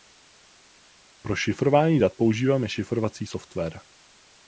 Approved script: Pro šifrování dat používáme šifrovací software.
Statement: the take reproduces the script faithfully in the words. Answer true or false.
true